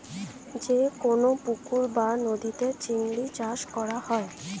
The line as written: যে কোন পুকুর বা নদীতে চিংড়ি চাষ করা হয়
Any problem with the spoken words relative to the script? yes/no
no